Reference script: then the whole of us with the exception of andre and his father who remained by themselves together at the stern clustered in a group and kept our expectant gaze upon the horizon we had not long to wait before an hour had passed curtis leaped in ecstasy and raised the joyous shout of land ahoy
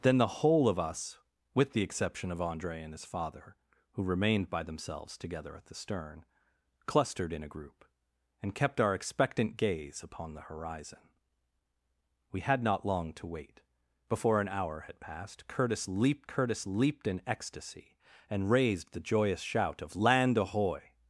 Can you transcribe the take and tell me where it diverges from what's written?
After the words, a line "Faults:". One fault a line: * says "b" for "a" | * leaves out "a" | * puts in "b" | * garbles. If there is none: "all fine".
then the whole of us with the exception of andre and his father who remained by themselves together at the stern clustered in a group and kept our expectant gaze upon the horizon we had not long to wait before an hour had passed curtis leaped curtis leaped in ecstasy and raised the joyous shout of land ahoy
Faults:
* puts in "curtis leaped"